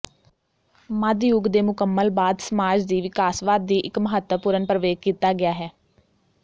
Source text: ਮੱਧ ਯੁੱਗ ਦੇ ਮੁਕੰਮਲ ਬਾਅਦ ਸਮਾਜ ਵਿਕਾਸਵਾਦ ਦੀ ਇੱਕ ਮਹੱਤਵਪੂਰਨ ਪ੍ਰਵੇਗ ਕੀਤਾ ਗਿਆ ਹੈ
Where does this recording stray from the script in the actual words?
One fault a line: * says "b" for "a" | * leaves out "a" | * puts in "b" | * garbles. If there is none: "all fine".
* puts in "ਦੀ"